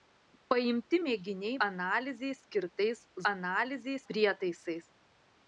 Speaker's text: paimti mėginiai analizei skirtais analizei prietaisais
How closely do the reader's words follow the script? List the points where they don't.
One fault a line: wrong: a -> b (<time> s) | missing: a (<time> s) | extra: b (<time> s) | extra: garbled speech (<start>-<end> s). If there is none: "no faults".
no faults